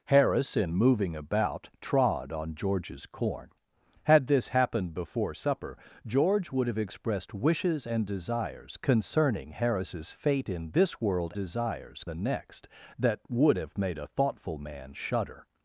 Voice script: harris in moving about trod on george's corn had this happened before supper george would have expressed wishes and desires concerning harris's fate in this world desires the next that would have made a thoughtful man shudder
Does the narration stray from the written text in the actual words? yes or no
no